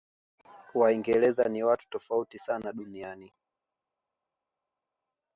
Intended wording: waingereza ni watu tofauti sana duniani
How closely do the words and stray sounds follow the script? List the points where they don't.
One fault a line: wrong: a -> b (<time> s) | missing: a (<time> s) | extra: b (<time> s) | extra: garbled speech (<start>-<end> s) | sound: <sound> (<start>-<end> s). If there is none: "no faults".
no faults